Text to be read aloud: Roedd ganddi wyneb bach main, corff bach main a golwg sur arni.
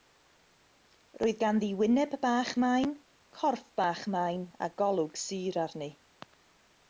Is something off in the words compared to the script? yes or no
no